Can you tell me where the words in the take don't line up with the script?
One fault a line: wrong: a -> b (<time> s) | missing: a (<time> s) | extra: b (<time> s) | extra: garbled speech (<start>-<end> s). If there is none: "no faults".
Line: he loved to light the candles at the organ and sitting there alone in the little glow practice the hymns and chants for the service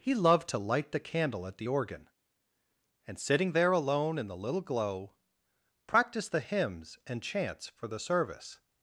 wrong: candles -> candle (1.0 s)